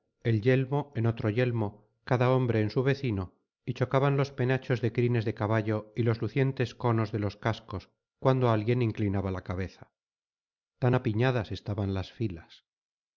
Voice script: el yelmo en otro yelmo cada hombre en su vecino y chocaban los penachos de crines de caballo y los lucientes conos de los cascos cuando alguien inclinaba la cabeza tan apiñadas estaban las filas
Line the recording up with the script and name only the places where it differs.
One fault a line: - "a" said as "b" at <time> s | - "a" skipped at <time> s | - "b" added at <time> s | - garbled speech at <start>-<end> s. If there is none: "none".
none